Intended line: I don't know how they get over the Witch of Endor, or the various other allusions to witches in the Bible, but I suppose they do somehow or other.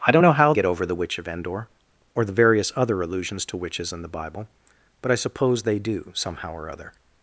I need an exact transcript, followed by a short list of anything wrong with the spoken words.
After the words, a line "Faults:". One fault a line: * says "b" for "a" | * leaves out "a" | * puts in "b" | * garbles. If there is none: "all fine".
I don't know how get over the Witch of Endor, or the various other allusions to witches in the Bible, but I suppose they do somehow or other.
Faults:
* leaves out "they"